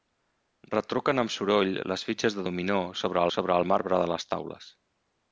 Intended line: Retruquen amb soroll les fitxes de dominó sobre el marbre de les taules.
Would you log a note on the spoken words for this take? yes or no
yes